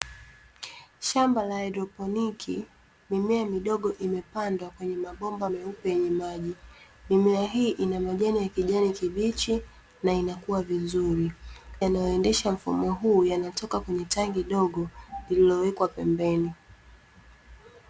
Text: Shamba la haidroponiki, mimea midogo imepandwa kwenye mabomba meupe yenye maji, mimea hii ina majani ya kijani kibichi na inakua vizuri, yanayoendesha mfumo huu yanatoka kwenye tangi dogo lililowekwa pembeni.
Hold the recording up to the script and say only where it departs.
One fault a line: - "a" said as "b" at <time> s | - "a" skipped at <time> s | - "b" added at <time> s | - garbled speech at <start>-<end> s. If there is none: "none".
none